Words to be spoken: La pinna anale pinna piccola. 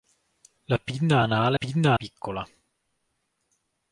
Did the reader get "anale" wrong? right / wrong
right